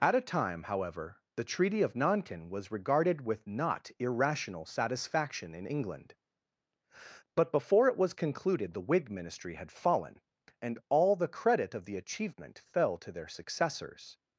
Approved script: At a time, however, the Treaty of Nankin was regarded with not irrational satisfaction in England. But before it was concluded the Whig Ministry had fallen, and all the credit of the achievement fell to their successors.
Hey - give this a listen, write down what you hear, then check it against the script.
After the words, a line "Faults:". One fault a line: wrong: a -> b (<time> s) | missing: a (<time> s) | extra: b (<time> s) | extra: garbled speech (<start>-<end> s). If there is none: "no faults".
At a time, however, the Treaty of Nankin was regarded with not irrational satisfaction in England. But before it was concluded the Whig Ministry had fallen, and all the credit of the achievement fell to their successors.
Faults:
no faults